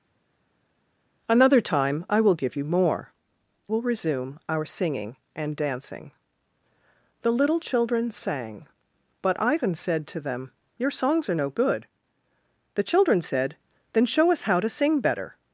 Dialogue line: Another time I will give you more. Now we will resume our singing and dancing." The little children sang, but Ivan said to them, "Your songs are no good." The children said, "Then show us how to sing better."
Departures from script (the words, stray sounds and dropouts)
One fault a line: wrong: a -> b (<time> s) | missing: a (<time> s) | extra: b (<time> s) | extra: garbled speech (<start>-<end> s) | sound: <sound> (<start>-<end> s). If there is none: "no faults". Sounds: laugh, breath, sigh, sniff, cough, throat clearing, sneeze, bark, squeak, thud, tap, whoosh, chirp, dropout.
missing: Now we (3.1 s)